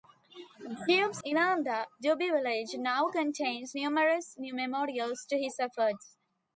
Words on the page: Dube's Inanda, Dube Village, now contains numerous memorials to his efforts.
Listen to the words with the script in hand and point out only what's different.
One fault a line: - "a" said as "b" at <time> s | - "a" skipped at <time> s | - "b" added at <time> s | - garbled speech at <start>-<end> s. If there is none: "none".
none